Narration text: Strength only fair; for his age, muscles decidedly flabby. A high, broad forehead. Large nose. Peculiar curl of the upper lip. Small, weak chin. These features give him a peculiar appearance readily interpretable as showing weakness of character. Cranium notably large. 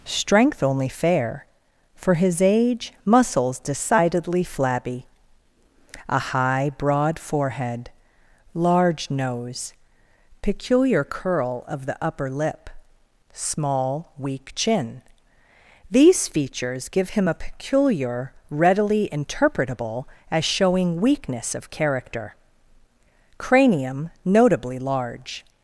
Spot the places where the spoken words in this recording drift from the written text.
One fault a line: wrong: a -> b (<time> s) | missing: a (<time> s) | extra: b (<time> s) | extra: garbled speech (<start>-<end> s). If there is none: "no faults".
missing: appearance (18.3 s)